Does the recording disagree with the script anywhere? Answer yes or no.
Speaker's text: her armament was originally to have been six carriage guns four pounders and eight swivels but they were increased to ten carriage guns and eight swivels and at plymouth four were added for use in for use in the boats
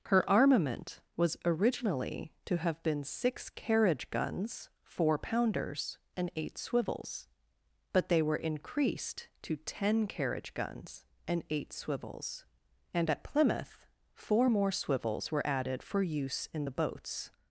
yes